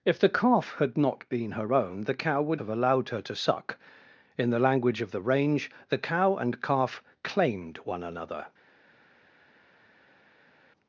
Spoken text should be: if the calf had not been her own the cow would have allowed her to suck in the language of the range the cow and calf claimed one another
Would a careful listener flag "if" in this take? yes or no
no